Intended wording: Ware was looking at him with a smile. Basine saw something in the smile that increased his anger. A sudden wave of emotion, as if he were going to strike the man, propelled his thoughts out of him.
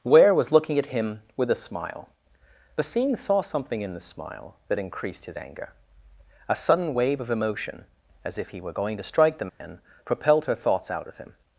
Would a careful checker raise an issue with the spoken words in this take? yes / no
yes